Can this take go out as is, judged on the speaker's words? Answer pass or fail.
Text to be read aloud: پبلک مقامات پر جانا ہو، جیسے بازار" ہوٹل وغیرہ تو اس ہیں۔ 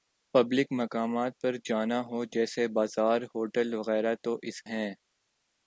pass